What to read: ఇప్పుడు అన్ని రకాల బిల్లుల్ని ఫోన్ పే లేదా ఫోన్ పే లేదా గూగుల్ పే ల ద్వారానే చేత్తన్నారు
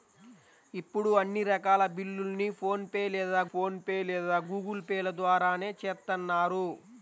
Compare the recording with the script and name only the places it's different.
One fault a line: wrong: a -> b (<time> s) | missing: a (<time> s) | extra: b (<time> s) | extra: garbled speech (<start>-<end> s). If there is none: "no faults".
no faults